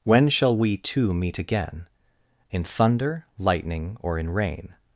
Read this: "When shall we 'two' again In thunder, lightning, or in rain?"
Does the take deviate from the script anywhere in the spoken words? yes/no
yes